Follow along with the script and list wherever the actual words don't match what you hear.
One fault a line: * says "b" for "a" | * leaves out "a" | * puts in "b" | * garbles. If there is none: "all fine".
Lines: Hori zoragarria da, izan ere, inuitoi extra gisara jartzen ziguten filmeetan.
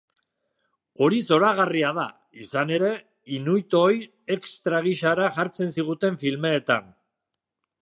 all fine